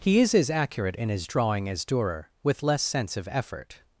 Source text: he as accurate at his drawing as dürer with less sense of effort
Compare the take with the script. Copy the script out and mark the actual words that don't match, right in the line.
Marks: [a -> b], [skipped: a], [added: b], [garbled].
he [added: is] as accurate [at -> in] his drawing as dürer with less sense of effort